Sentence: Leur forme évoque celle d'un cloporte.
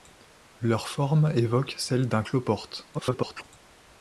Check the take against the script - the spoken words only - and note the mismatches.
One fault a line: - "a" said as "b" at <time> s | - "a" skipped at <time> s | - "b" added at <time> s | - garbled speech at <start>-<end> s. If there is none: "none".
- garbled speech at 2.9-3.4 s